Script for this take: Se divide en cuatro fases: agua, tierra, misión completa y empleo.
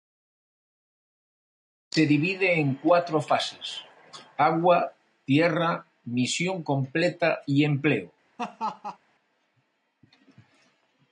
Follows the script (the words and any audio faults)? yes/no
no